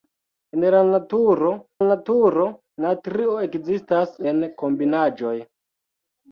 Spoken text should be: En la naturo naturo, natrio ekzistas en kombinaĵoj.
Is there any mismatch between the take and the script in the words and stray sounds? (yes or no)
no